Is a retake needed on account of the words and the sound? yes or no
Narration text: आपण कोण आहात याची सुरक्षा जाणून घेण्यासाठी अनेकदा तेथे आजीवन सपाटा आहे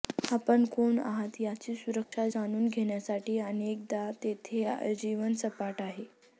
yes